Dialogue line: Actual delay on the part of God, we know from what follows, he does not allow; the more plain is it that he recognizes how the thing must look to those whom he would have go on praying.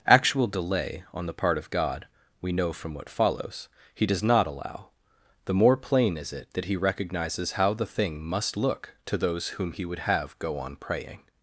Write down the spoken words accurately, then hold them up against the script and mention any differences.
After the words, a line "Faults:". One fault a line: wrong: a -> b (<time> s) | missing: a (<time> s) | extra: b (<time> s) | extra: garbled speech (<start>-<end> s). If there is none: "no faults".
Actual delay on the part of God, we know from what follows, he does not allow; the more plain is it that he recognizes how the thing must look to those whom he would have go on praying.
Faults:
no faults